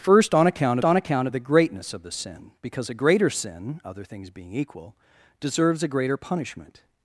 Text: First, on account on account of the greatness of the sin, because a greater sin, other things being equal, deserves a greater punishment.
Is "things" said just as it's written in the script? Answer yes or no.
yes